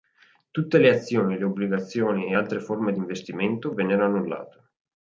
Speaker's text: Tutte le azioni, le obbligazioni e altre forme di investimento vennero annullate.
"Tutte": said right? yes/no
yes